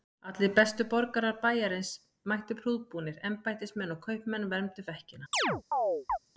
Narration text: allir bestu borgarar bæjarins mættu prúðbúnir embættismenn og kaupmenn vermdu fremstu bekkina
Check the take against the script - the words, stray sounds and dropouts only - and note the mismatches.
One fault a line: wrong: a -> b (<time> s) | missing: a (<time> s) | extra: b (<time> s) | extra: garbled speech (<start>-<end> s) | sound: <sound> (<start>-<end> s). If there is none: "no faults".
missing: fremstu (4.9 s)
sound: chirp (5.3-6.2 s)